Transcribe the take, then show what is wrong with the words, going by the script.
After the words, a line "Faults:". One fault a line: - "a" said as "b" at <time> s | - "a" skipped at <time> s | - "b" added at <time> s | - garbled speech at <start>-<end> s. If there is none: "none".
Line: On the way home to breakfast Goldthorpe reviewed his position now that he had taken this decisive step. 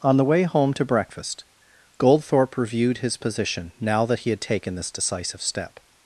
On the way home to breakfast Goldthorpe reviewed his position now that he had taken this decisive step.
Faults:
none